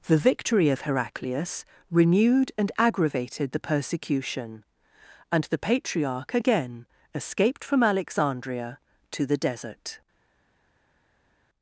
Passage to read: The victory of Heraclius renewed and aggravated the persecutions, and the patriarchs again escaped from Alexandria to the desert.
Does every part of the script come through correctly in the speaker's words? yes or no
no